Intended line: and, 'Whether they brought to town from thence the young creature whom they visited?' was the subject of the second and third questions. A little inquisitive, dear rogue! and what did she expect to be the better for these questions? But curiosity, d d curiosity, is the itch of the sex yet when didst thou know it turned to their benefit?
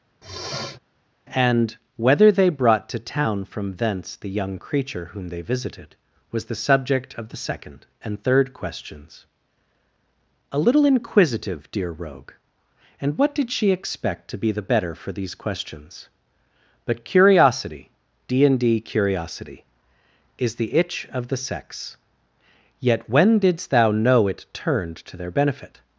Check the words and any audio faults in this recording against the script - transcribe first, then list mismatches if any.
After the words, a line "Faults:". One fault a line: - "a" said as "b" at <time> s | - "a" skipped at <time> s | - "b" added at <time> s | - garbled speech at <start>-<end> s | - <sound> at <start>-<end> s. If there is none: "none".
and, 'Whether they brought to town from thence the young creature whom they visited?' was the subject of the second and third questions. A little inquisitive, dear rogue! and what did she expect to be the better for these questions? But curiosity, d and d curiosity, is the itch of the sex yet when didst thou know it turned to their benefit?
Faults:
- sniff at 0.2-0.8 s
- "and" added at 18.4 s